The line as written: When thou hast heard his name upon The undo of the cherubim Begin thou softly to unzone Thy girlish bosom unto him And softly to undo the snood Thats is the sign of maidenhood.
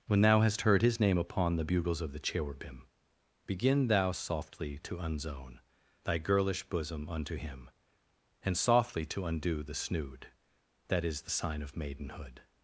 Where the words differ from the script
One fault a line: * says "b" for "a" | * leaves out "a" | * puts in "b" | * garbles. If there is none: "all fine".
* says "bugles" for "undo"
* says "That" for "Thats"